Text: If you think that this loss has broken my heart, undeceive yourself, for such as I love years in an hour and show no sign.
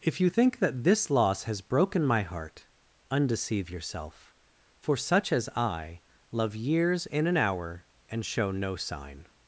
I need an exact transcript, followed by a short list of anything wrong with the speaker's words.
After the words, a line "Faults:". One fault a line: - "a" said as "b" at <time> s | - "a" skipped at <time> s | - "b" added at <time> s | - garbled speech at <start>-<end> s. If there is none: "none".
If you think that this loss has broken my heart, undeceive yourself, for such as I love years in an hour and show no sign.
Faults:
none